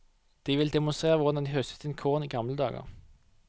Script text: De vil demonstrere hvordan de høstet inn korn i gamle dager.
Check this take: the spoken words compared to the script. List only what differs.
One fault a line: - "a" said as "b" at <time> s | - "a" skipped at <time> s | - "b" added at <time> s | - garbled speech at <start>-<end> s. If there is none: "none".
none